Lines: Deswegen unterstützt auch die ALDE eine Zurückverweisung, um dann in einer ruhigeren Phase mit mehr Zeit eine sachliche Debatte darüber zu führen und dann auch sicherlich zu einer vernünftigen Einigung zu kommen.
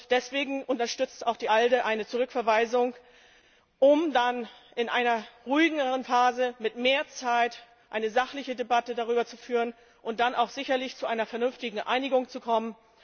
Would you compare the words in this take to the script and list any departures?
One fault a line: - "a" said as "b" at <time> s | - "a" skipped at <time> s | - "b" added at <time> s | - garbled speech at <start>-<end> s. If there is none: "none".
none